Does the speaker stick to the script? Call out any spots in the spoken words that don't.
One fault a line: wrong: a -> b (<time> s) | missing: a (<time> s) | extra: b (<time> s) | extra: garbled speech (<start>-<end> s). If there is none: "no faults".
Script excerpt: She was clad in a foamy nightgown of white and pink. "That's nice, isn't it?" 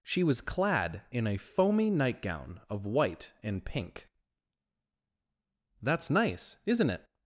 no faults